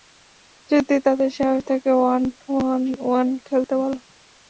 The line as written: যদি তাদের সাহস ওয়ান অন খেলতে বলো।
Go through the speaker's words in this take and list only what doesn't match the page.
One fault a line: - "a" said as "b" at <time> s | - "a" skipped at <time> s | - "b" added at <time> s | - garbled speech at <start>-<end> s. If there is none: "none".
- "থাকে" added at 1.7 s
- "ওয়ান" added at 3.0 s